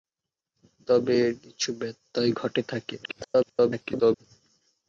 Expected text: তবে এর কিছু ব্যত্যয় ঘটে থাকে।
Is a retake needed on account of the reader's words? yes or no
yes